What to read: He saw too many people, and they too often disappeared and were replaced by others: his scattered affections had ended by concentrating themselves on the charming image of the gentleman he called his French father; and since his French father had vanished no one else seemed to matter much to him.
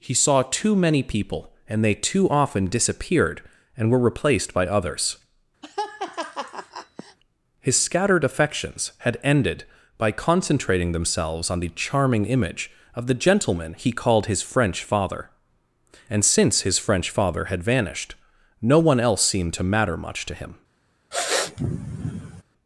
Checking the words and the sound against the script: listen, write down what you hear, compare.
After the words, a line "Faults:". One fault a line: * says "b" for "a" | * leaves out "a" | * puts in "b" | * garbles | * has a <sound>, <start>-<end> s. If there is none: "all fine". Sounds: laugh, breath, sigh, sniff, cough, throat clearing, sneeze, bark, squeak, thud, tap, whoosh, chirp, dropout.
He saw too many people, and they too often disappeared and were replaced by others: his scattered affections had ended by concentrating themselves on the charming image of the gentleman he called his French father; and since his French father had vanished no one else seemed to matter much to him.
Faults:
* has a laugh, 5.6-7.2 s
* has a sniff, 21.1-22.4 s